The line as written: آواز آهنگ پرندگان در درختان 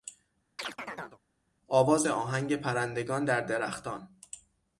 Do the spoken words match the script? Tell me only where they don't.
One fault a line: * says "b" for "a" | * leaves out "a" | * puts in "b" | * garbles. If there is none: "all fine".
all fine